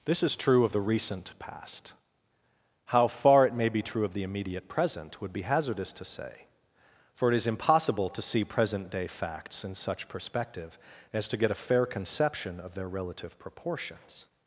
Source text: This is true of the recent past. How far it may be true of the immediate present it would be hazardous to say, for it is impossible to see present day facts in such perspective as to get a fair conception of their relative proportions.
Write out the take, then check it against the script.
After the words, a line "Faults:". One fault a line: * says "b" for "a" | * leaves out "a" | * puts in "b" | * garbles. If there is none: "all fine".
This is true of the recent past. How far it may be true of the immediate present would be hazardous to say, for it is impossible to see present day facts in such perspective as to get a fair conception of their relative proportions.
Faults:
* leaves out "it"